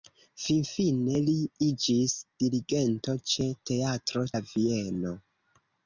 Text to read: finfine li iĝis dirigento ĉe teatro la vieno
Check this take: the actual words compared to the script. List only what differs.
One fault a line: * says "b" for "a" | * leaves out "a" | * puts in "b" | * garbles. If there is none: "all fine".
all fine